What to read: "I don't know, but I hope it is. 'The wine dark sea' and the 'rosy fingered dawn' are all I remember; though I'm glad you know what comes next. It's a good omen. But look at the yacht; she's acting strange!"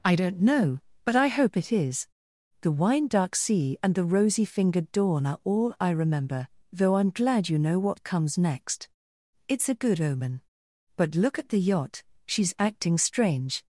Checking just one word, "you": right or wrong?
right